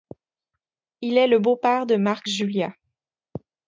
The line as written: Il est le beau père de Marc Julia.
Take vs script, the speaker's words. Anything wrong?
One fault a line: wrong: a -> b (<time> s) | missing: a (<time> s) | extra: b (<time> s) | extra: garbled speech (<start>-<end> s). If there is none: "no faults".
no faults